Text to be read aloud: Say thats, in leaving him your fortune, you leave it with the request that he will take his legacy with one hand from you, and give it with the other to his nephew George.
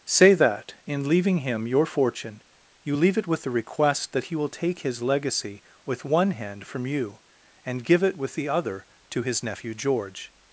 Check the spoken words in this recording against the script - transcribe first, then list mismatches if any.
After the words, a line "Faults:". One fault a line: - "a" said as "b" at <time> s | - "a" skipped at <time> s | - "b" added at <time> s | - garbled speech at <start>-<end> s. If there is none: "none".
Say that, in leaving him your fortune, you leave it with the request that he will take his legacy with one hand from you, and give it with the other to his nephew George.
Faults:
- "thats" said as "that" at 0.3 s